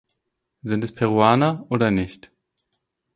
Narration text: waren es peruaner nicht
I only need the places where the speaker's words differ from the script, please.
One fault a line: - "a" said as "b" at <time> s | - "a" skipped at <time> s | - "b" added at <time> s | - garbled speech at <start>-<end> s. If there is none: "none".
- "waren" said as "sind" at 0.6 s
- "oder" added at 1.7 s